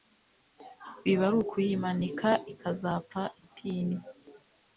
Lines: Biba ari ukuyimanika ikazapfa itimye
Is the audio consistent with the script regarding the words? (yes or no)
yes